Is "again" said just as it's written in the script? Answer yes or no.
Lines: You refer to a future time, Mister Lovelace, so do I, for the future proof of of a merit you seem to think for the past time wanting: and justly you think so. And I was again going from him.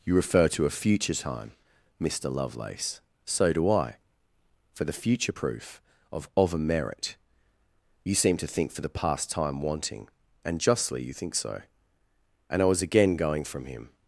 yes